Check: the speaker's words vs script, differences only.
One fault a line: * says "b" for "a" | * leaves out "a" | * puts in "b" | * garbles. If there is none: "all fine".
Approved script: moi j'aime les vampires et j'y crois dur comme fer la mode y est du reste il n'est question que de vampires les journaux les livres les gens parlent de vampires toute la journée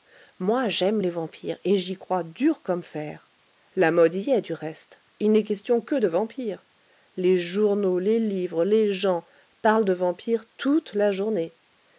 all fine